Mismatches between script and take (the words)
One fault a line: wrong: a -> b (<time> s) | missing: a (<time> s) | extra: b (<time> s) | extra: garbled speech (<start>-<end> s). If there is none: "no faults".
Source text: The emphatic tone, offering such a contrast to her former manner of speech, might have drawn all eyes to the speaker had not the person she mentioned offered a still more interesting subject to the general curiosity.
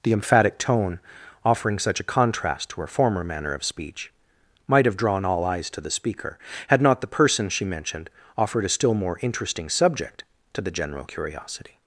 no faults